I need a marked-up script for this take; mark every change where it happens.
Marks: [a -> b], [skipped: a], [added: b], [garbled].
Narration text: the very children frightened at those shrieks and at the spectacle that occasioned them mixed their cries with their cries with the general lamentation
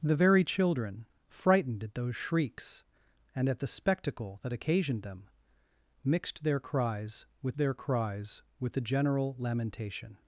the very children frightened at those shrieks and at the spectacle that occasioned them mixed their cries with their cries with the general lamentation